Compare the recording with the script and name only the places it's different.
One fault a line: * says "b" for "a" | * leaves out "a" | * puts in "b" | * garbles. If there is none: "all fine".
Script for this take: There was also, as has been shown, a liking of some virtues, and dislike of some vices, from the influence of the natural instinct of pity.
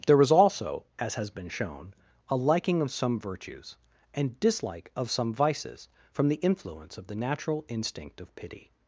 all fine